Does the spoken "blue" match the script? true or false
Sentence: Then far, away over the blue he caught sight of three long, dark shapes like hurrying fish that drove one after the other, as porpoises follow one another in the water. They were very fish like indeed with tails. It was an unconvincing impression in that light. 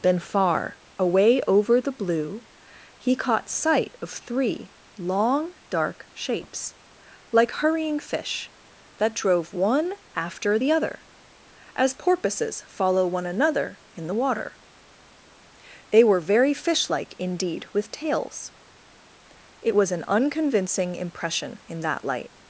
true